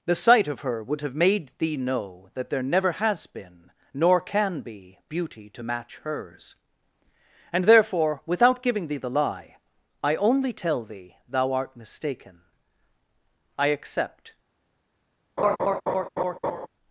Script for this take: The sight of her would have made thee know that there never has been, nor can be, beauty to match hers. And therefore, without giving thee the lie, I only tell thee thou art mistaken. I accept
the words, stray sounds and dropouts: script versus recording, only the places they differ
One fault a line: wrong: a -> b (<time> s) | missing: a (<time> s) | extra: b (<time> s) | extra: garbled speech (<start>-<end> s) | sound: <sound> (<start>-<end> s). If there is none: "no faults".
sound: laugh (15.4-16.7 s)